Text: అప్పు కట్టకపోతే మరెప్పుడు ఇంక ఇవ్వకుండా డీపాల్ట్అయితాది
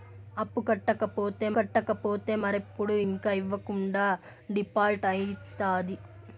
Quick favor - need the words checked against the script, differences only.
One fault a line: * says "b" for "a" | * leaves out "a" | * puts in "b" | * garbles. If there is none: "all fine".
* puts in "కట్టకపోతే"